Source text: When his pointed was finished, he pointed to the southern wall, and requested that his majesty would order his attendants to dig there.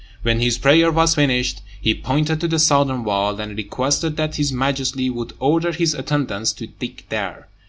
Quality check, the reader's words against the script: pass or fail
fail